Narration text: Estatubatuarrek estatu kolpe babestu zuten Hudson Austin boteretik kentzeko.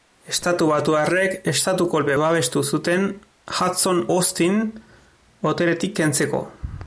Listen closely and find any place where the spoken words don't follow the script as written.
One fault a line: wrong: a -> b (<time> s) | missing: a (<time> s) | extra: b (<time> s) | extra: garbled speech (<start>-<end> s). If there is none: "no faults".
no faults